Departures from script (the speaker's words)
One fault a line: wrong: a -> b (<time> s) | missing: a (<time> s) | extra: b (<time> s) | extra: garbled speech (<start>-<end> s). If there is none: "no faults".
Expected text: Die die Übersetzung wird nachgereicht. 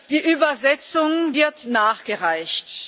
missing: die (0.2 s)